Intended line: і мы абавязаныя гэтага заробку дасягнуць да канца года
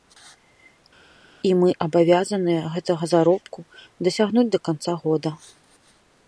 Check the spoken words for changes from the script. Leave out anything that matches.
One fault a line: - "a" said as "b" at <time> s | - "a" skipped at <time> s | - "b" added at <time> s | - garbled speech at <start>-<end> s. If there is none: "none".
none